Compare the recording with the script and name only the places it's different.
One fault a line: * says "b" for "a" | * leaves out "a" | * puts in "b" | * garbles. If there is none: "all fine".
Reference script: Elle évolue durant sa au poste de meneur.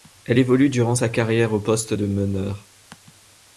* puts in "carrière"